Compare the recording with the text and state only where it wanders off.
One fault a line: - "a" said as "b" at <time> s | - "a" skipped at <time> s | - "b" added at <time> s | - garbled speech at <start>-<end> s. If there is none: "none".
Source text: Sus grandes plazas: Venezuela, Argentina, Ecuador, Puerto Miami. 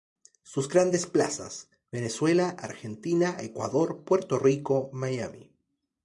- "Rico" added at 4.4 s